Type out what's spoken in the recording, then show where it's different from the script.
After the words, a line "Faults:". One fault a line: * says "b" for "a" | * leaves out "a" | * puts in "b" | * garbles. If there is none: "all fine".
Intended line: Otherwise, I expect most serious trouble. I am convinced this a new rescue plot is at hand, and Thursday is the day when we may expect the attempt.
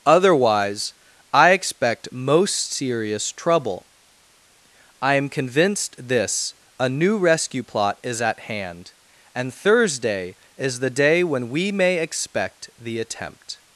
Otherwise, I expect most serious trouble. I am convinced this a new rescue plot is at hand, and Thursday is the day when we may expect the attempt.
Faults:
all fine